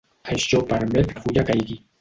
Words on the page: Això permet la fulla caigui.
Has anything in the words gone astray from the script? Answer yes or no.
no